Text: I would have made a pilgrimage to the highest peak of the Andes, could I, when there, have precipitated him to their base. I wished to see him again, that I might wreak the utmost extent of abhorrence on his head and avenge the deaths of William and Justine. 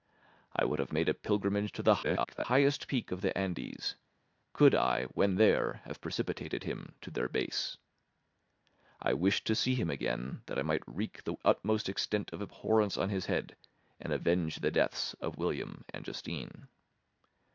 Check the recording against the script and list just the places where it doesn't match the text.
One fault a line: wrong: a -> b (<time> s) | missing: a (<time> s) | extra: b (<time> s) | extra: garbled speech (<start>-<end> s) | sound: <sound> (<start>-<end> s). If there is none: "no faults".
extra: garbled speech (2.0-2.4 s)